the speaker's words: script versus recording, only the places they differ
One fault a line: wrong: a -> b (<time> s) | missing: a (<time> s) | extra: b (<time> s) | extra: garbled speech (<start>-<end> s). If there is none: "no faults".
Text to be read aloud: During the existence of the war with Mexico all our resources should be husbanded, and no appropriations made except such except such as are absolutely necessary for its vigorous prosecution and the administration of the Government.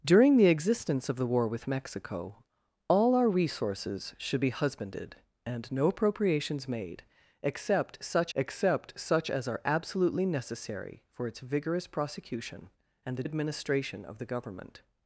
no faults